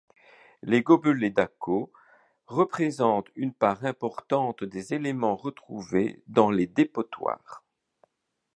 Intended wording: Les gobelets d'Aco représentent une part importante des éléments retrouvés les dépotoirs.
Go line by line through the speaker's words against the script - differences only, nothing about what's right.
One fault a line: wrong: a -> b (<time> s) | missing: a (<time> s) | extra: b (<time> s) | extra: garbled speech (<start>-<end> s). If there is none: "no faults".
extra: dans (6.2 s)